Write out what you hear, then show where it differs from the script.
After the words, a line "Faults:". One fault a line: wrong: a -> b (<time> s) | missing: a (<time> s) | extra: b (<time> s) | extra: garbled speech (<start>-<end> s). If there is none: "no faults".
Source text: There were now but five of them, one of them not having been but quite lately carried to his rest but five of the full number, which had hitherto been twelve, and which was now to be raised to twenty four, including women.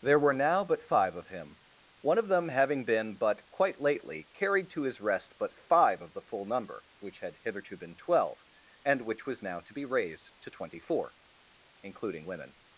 There were now but five of him, one of them having been but quite lately carried to his rest but five of the full number, which had hitherto been twelve, and which was now to be raised to twenty four, including women.
Faults:
wrong: them -> him (1.3 s)
missing: not (2.5 s)